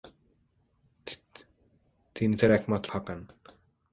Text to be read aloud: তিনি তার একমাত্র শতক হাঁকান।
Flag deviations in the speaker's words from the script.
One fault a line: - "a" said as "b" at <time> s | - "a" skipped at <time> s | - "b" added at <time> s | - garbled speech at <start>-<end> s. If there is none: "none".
- "শতক" skipped at 2.9 s